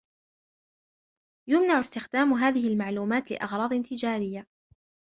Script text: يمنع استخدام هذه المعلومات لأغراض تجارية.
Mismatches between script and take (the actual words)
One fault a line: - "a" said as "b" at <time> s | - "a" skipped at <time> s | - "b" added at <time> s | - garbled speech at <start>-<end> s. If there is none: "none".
none